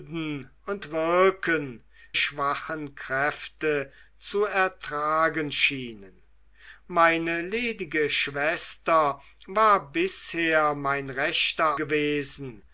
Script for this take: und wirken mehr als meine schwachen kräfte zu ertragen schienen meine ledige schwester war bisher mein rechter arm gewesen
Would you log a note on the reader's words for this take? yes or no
yes